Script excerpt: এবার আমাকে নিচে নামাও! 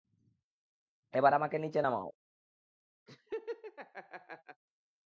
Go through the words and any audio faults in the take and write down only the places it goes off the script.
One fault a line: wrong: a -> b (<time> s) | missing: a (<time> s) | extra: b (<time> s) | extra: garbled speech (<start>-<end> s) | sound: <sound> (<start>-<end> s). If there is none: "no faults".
sound: laugh (3.1-4.6 s)